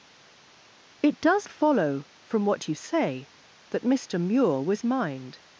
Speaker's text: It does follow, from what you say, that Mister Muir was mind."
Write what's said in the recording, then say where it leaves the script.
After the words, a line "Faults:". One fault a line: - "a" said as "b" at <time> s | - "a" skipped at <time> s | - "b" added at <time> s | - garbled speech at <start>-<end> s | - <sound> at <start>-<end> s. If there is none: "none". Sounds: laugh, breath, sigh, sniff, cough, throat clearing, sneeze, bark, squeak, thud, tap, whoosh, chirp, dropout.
It does follow, from what you say, that Mister Muir was mind."
Faults:
none